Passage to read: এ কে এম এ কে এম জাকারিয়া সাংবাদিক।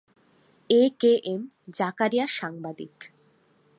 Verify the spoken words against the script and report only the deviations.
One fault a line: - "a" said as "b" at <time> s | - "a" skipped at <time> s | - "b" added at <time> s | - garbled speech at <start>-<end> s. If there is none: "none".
- "এ কে এম" skipped at 1.4 s